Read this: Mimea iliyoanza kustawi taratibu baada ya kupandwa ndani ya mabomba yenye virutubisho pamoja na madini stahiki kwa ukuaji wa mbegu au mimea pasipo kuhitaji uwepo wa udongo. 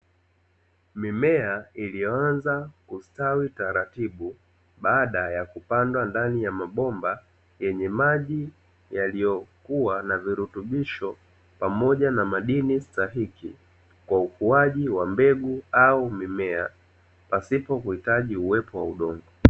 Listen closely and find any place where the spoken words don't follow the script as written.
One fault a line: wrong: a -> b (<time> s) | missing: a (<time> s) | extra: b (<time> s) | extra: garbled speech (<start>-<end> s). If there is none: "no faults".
extra: maji yaliyokuwa na (7.9 s)